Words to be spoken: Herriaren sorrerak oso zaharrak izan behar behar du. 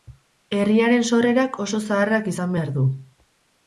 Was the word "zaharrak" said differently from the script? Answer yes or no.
no